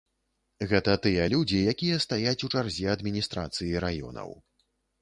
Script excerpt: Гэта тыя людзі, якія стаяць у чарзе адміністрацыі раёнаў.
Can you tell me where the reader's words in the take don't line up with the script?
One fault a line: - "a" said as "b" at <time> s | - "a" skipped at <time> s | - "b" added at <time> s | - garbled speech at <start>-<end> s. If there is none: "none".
none